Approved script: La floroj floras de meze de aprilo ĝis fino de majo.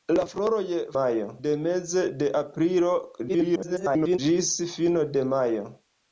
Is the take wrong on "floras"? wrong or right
wrong